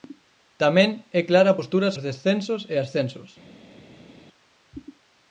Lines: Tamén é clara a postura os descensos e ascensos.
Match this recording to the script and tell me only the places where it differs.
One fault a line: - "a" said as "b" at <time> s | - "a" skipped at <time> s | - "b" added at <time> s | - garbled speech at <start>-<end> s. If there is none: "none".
none